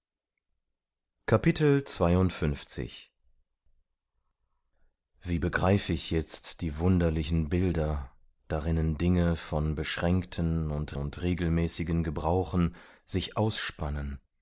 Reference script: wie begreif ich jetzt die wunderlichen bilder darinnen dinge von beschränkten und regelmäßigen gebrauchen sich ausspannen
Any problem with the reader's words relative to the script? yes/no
yes